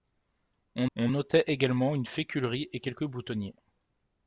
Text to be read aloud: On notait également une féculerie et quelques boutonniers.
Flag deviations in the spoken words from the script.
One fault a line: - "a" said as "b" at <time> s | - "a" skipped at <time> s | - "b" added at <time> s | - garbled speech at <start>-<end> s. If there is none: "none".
- "on" added at 1.0 s